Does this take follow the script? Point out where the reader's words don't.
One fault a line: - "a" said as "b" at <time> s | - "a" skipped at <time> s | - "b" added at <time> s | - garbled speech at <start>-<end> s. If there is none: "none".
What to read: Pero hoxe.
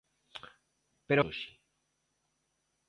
none